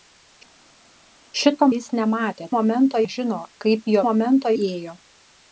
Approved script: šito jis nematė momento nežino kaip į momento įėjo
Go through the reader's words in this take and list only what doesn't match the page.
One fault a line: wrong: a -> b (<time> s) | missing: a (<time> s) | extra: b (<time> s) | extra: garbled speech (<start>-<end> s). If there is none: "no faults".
no faults